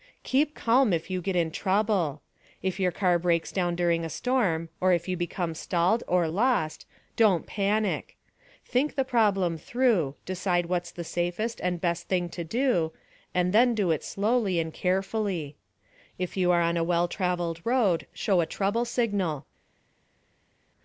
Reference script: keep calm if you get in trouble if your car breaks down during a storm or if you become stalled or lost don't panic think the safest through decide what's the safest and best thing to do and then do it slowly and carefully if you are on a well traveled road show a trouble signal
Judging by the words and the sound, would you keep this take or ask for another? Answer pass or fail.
fail